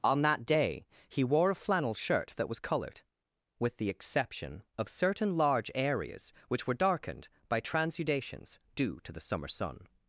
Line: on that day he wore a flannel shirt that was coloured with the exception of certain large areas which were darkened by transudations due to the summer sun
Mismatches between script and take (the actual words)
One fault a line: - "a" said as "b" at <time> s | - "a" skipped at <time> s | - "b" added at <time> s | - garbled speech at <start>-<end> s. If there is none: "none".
none